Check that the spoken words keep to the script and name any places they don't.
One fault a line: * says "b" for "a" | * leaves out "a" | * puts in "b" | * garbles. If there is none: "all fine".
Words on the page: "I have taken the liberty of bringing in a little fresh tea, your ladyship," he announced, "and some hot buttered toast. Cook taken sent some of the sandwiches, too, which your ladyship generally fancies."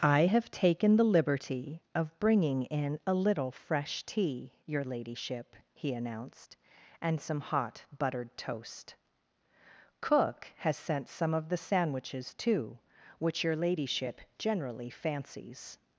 * says "has" for "taken"